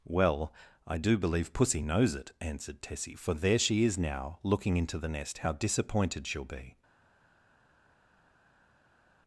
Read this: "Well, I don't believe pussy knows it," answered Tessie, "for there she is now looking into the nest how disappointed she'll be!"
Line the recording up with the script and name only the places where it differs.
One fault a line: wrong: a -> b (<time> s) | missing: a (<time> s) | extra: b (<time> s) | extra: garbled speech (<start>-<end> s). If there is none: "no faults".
wrong: don't -> do (1.0 s)